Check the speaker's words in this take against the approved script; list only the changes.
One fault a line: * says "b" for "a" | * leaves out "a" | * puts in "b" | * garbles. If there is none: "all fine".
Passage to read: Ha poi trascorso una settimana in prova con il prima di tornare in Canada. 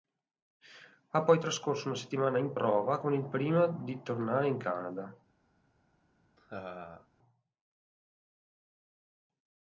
all fine